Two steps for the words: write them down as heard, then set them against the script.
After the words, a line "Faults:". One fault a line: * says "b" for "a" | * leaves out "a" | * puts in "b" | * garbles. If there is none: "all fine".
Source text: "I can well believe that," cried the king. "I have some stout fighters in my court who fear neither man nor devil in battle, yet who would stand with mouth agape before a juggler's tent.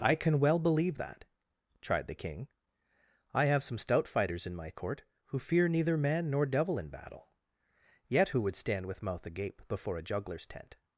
"I can well believe that," tried the king. "I have some stout fighters in my court who fear neither man nor devil in battle, yet who would stand with mouth agape before a juggler's tent.
Faults:
* says "tried" for "cried"